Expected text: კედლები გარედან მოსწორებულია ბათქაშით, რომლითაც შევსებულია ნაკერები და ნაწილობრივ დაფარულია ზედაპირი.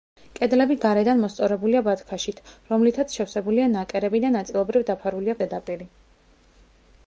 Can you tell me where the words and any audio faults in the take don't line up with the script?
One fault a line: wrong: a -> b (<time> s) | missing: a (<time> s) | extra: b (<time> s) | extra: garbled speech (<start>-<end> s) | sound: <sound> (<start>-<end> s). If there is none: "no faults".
no faults